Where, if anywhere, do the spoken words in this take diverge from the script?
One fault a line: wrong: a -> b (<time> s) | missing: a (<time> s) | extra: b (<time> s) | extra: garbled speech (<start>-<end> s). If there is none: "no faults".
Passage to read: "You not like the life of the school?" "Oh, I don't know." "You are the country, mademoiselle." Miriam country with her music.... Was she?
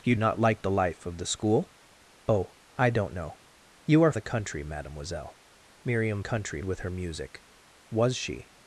no faults